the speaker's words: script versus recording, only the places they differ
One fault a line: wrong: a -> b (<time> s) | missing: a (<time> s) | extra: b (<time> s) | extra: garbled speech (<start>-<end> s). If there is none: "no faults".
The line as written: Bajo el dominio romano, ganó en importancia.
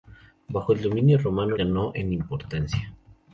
no faults